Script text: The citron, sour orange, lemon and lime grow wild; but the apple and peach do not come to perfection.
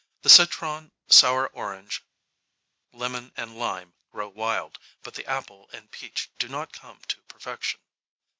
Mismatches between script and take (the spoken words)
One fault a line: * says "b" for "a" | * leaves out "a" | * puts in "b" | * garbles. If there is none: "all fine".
all fine